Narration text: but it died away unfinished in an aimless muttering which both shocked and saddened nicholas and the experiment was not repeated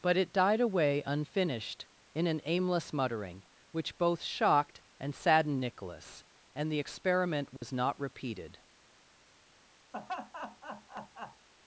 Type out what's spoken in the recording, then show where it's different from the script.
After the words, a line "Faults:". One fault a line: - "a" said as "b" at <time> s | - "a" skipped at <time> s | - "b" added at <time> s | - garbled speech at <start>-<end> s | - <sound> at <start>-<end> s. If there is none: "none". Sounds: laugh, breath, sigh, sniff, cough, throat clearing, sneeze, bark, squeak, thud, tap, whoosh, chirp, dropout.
but it died away unfinished in an aimless muttering which both shocked and saddened nicholas and the experiment was not repeated
Faults:
- dropout at 7.6-7.6 s
- laugh at 9.9-11.5 s